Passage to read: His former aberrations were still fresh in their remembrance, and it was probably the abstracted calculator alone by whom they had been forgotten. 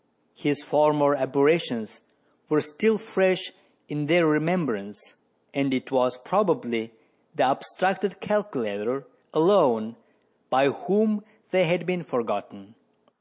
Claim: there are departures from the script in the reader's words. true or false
false